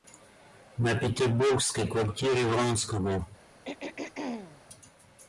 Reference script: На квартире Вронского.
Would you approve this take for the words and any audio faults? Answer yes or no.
no